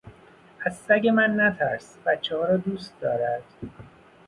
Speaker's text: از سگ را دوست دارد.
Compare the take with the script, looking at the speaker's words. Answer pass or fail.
fail